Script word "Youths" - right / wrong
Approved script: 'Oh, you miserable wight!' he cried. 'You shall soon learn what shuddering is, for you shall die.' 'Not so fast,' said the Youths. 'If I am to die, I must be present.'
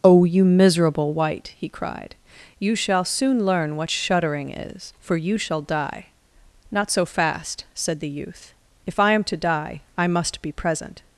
wrong